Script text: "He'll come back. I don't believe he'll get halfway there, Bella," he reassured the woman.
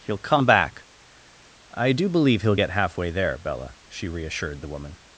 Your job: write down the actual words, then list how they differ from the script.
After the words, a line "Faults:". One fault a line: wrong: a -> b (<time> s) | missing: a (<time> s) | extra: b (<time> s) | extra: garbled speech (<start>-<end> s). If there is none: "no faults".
"He'll come back. I do believe he'll get halfway there, Bella," she reassured the woman.
Faults:
wrong: don't -> do (1.9 s)
wrong: he -> she (3.9 s)